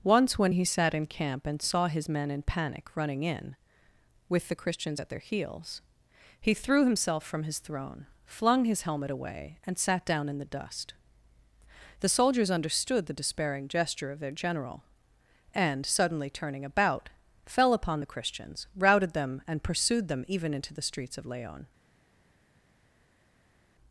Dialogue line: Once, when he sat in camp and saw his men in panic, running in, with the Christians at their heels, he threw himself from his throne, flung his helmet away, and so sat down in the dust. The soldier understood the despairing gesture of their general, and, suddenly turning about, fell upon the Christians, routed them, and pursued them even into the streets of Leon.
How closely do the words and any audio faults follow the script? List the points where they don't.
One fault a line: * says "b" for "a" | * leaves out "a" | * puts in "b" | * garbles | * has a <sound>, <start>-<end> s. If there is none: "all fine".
* leaves out "so"
* says "soldiers" for "soldier"